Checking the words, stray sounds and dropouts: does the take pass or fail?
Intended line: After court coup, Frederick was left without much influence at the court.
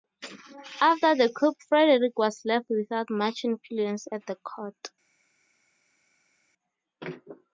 fail